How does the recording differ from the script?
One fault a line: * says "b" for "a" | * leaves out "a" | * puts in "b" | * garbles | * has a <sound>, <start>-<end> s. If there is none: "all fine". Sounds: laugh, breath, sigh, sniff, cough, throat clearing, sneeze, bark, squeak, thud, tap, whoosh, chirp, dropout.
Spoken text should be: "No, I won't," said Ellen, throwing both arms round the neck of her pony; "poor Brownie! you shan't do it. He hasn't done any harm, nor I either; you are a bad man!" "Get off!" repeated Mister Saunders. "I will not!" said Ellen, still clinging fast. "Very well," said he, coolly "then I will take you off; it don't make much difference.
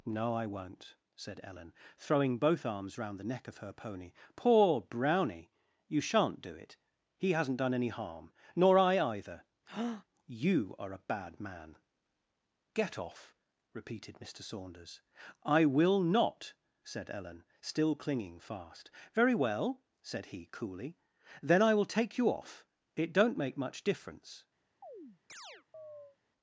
* has a breath, 9.7-10.0 s
* has a chirp, 24.8-26.2 s